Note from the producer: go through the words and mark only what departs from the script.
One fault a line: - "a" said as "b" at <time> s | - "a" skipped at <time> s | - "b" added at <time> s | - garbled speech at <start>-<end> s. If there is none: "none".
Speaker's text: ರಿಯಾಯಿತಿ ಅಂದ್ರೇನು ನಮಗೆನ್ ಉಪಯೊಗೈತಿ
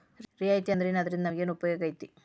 - "ಅದ್ರಿಂದಾ" added at 1.0 s